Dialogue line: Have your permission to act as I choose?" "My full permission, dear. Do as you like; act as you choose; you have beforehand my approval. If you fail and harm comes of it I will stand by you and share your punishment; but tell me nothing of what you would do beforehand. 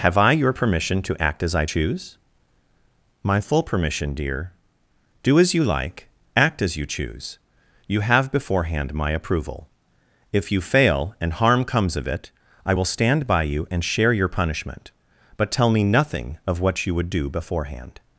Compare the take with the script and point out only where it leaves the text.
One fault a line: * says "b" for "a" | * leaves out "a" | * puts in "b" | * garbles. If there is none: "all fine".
* puts in "I"